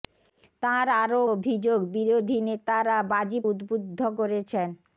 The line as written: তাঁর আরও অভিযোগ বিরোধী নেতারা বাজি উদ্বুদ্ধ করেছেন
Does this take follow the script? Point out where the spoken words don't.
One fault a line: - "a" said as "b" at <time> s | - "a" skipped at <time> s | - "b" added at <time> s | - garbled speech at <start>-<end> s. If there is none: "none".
none